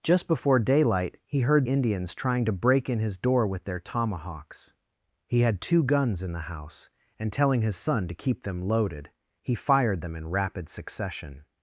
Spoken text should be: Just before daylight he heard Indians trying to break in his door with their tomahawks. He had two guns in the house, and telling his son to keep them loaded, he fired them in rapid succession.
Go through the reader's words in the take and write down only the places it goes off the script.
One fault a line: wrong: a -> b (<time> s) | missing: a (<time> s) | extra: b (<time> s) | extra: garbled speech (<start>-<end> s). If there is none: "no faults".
no faults